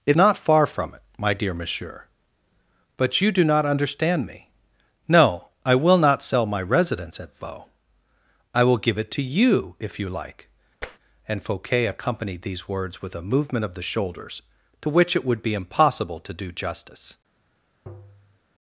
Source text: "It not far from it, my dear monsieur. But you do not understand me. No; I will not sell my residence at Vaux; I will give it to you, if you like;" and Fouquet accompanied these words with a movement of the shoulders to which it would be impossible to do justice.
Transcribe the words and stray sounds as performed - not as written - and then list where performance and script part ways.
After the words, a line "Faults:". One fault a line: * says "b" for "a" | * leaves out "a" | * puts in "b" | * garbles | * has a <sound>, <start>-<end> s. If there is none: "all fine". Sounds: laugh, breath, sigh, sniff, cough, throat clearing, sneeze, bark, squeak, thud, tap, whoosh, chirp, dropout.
"It not far from it, my dear monsieur. But you do not understand me. No; I will not sell my residence at Vaux; I will give it to you, if you like;" and Fouquet accompanied these words with a movement of the shoulders to which it would be impossible to do justice.
Faults:
* has a tap, 10.8-11.0 s
* has a tap, 17.9-18.4 s